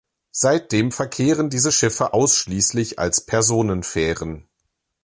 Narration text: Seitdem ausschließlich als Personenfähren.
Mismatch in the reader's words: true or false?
true